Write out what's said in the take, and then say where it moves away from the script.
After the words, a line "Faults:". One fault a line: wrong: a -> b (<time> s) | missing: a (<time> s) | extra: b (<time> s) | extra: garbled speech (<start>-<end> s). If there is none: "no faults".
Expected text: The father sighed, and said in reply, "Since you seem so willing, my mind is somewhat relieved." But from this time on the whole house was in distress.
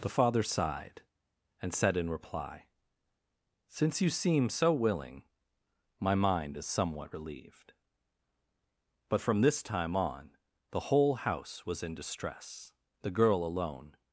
The father sighed, and said in reply, "Since you seem so willing, my mind is somewhat relieved." But from this time on the whole house was in distress. The girl alone
Faults:
extra: The girl alone (13.0 s)